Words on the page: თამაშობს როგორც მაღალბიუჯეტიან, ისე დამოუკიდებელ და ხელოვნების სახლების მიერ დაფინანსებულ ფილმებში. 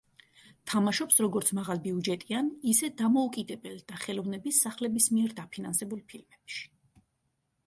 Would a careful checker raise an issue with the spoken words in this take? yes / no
no